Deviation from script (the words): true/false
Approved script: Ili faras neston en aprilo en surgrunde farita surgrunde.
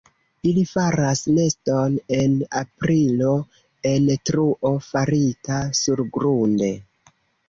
true